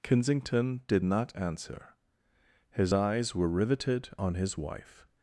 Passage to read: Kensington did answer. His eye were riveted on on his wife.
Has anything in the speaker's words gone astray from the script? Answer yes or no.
yes